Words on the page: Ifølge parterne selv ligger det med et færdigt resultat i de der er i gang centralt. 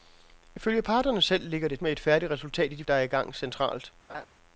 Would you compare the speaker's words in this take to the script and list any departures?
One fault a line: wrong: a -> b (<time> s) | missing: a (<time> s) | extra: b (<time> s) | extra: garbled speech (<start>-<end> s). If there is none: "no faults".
no faults